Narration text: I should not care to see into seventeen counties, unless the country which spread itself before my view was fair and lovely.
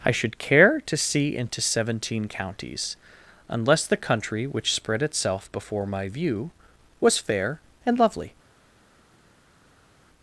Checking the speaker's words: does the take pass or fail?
fail